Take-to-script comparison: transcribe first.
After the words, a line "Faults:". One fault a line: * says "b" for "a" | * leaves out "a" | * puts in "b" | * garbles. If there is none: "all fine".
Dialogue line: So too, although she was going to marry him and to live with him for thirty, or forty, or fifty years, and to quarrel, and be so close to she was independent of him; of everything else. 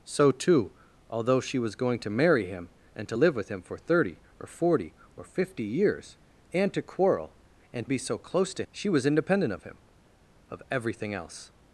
So too, although she was going to marry him and to live with him for thirty, or forty, or fifty years, and to quarrel, and be so close to she was independent of him; of everything else.
Faults:
all fine